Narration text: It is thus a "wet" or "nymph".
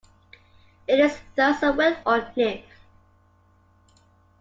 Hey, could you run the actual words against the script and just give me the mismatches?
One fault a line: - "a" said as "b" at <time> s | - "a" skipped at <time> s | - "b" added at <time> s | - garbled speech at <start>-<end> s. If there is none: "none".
none